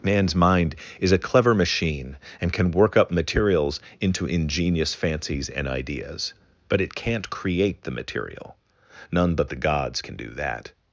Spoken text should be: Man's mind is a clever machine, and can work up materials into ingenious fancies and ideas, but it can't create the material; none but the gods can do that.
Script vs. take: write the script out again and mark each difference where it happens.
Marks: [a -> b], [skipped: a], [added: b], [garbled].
Man's mind is a clever machine, and can work up materials into ingenious fancies and ideas, but it can't create the material; none but the gods can do that.